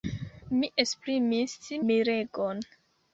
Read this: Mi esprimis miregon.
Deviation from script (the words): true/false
false